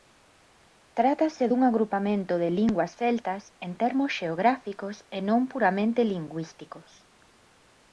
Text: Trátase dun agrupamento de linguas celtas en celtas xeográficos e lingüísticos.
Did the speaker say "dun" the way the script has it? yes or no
yes